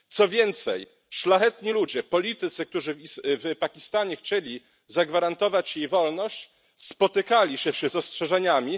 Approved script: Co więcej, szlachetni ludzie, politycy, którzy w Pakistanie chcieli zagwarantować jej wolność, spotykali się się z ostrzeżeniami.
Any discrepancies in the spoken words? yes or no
no